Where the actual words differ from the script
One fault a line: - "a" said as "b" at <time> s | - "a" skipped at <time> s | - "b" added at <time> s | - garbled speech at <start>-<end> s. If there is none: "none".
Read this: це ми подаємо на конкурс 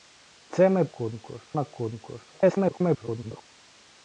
- "подаємо" said as "конкурс" at 0.9 s
- garbled speech at 2.3-3.4 s